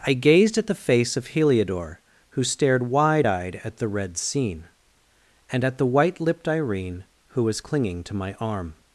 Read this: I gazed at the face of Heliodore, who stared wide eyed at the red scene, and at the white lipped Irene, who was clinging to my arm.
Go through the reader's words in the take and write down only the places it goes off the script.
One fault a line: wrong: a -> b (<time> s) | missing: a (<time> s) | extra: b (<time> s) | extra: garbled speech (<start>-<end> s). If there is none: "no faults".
no faults